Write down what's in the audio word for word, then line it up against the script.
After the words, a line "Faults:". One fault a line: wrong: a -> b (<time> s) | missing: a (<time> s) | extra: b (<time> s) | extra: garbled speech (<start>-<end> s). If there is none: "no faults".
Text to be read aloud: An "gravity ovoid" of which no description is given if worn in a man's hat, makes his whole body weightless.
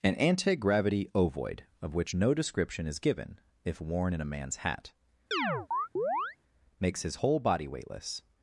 An "anti gravity ovoid" of which no description is given if worn in a man's hat, makes his whole body weightless.
Faults:
extra: anti (0.1 s)